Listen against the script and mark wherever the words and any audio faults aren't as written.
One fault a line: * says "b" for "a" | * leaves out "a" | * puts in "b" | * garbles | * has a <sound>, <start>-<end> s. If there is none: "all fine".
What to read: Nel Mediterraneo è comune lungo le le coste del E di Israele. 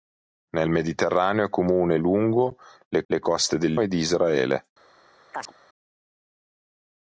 * has a chirp, 5.3-5.5 s